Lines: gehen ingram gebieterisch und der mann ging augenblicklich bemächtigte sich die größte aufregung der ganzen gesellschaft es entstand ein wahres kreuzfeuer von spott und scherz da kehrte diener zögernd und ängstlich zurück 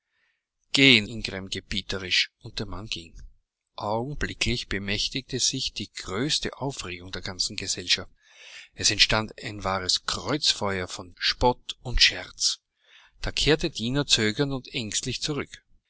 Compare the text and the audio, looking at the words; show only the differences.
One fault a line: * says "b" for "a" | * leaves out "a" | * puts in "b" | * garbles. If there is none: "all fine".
all fine